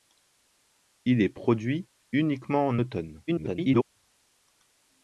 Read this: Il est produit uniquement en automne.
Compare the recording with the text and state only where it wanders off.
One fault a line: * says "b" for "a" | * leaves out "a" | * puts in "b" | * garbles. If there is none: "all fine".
* garbles